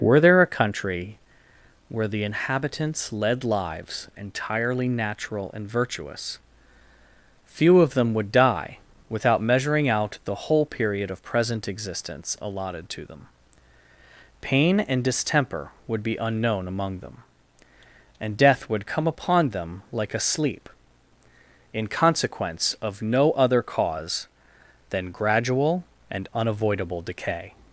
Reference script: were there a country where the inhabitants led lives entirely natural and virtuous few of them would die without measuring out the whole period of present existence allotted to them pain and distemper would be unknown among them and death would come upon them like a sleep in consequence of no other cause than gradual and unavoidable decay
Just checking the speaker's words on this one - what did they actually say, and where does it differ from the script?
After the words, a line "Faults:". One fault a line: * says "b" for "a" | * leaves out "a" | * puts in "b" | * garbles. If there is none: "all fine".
were there a country where the inhabitants led lives entirely natural and virtuous few of them would die without measuring out the whole period of present existence allotted to them pain and distemper would be unknown among them and death would come upon them like a sleep in consequence of no other cause than gradual and unavoidable decay
Faults:
all fine